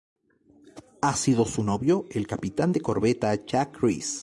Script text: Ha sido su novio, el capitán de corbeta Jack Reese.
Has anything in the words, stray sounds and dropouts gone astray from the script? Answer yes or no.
no